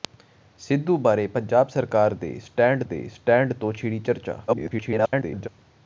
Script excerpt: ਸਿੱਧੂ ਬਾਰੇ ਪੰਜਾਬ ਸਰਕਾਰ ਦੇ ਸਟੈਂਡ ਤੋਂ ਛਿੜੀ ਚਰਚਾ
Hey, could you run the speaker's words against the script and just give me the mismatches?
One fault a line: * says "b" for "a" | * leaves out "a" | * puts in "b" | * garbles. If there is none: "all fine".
* puts in "ਦੇ ਸਟੈਂਡ"
* garbles